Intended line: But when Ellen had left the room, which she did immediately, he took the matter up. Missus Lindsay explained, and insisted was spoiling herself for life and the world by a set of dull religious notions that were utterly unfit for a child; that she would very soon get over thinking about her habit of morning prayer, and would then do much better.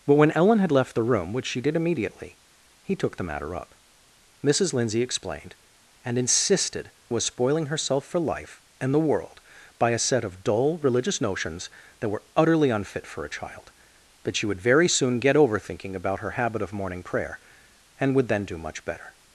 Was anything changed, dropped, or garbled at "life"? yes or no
no